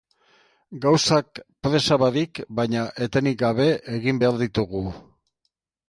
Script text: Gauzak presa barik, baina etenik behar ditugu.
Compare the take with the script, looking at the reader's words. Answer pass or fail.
fail